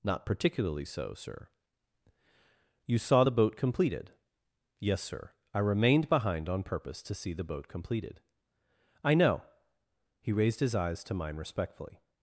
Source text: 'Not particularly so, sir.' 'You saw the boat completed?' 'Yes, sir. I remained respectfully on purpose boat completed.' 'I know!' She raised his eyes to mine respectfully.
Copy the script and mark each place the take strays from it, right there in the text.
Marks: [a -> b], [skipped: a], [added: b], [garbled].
'Not particularly so, sir.' 'You saw the boat completed?' 'Yes, sir. I remained [respectfully -> behind] on purpose [added: to see the] boat completed.' 'I know!' [She -> He] raised his eyes to mine respectfully.